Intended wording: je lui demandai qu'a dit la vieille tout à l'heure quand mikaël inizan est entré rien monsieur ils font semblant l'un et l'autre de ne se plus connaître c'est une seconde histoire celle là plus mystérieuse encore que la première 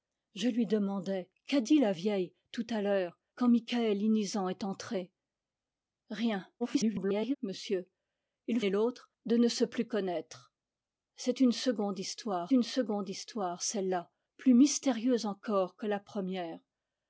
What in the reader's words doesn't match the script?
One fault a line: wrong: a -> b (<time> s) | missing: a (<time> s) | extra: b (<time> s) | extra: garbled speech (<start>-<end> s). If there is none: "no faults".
extra: garbled speech (6.6-7.4 s)
missing: font semblant l'un (8.6 s)
extra: une seconde histoire (12.5 s)